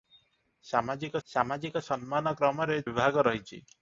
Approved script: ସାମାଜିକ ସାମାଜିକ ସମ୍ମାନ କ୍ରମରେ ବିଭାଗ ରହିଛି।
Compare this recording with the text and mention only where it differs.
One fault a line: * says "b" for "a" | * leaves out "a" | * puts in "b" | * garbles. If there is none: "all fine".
all fine